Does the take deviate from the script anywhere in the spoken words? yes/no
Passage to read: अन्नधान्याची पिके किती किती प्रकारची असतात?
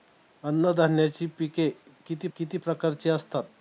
no